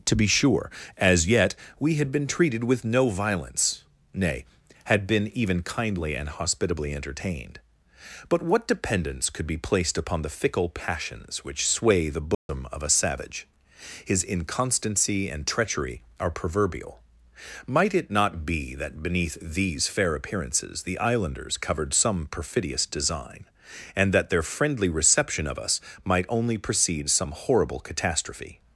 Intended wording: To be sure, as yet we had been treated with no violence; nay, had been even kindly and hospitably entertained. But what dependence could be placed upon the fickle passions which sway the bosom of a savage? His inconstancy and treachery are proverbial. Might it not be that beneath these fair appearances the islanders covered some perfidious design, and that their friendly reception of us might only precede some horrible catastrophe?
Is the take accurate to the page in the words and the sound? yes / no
no